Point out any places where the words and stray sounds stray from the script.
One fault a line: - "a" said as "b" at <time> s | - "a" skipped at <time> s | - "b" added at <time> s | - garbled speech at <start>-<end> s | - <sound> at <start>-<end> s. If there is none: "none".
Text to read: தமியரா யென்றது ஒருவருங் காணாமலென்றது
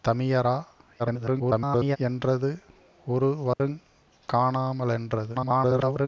- garbled speech at 1.0-2.0 s
- dropout at 3.5-3.6 s
- garbled speech at 5.3-6.1 s